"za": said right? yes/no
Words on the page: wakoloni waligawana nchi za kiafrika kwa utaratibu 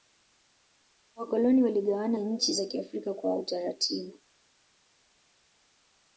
yes